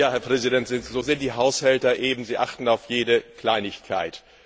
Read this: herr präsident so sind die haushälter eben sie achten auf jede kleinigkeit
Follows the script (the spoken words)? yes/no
yes